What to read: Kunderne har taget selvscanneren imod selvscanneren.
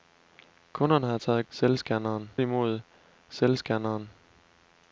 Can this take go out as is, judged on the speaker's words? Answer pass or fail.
pass